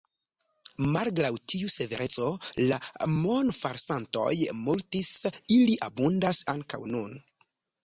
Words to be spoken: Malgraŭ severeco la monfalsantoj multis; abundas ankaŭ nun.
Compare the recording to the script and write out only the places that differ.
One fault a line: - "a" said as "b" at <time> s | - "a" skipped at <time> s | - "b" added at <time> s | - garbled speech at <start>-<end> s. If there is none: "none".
- "tiu" added at 1.5 s
- "ili" added at 5.6 s